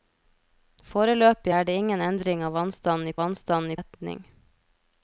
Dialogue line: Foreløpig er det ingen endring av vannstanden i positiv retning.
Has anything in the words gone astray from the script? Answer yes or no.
yes